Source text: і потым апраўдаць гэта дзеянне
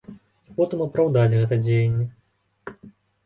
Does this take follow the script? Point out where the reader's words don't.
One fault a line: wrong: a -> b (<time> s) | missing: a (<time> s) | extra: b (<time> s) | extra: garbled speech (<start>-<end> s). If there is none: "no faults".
no faults